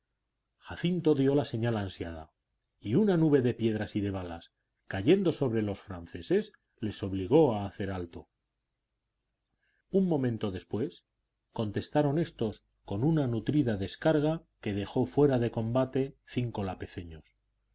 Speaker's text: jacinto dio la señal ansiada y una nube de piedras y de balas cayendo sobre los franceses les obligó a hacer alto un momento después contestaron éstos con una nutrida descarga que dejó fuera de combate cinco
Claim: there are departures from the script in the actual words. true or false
false